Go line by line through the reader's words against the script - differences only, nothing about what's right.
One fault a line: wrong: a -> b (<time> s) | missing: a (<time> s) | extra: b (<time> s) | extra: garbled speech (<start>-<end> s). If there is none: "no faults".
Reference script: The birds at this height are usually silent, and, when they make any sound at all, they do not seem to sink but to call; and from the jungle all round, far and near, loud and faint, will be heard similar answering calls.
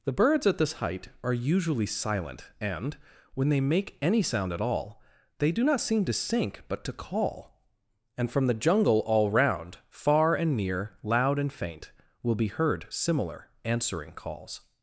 no faults